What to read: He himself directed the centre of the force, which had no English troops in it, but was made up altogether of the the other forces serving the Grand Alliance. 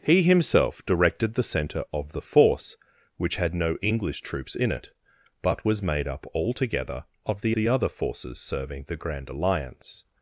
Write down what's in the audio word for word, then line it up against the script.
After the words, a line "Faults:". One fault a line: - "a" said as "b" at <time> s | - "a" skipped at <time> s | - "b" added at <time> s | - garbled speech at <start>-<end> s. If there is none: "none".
He himself directed the centre of the force, which had no English troops in it, but was made up altogether of the the other forces serving the Grand Alliance.
Faults:
none